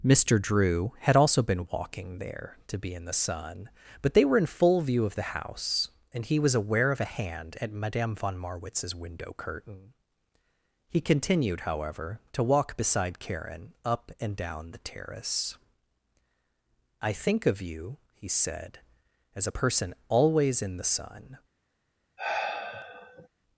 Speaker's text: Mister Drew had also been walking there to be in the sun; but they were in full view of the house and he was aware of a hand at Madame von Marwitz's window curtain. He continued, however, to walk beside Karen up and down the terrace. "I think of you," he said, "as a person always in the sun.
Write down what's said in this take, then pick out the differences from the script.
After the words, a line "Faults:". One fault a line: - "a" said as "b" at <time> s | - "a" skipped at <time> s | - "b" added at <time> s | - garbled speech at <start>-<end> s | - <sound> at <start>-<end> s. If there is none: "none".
Mister Drew had also been walking there to be in the sun; but they were in full view of the house and he was aware of a hand at Madame von Marwitz's window curtain. He continued, however, to walk beside Karen up and down the terrace. "I think of you," he said, "as a person always in the sun.
Faults:
- sigh at 22.2-23.3 s